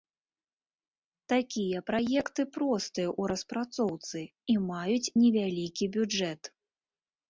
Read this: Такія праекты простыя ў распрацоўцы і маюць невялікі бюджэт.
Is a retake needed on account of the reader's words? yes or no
no